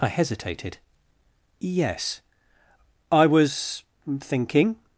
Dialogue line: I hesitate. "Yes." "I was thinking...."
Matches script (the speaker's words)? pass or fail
fail